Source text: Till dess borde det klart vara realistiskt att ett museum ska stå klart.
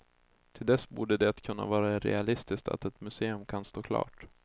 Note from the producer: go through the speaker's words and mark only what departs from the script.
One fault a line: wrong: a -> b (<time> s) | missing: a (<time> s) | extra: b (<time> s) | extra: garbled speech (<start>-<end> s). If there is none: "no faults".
wrong: klart -> kunna (1.4 s)
wrong: ska -> kan (3.4 s)